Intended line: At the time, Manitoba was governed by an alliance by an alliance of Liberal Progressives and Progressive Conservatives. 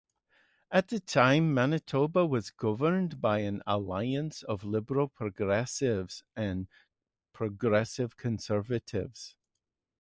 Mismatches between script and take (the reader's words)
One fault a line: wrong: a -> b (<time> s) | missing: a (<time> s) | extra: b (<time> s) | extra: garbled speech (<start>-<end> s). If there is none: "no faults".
missing: by an alliance (4.4 s)